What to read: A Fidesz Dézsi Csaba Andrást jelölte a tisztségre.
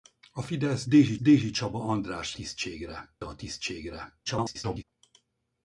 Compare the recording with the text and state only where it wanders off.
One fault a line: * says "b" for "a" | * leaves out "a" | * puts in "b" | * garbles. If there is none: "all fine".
* puts in "Dézsi"
* says "tisztségre" for "jelölte"
* garbles